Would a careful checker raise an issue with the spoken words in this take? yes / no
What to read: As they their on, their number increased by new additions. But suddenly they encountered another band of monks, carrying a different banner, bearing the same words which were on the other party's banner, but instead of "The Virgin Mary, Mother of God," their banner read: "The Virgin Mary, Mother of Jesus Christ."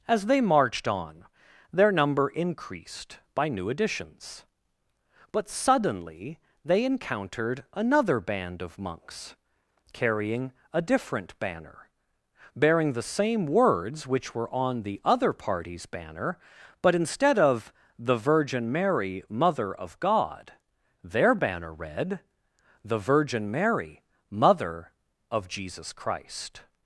yes